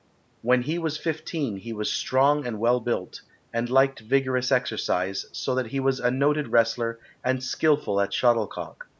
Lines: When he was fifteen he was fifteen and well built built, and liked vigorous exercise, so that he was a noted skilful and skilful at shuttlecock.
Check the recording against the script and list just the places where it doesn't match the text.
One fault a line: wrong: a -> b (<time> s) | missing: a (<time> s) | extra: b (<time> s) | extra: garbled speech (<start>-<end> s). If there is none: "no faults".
wrong: fifteen -> strong (1.9 s)
missing: built (3.2 s)
wrong: skilful -> wrestler (6.5 s)